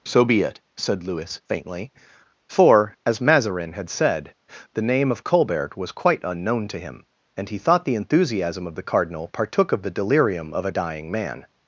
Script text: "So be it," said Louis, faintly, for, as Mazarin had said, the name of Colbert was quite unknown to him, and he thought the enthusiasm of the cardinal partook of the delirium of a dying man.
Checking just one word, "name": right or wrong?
right